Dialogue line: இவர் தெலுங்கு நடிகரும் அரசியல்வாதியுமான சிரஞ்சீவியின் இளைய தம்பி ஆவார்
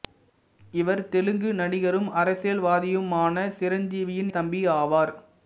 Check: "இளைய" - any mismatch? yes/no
yes